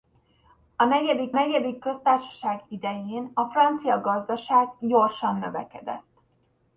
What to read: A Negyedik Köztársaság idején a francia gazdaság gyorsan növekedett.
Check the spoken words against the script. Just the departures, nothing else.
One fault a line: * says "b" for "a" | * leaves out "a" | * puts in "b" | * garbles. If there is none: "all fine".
* puts in "Negyedik"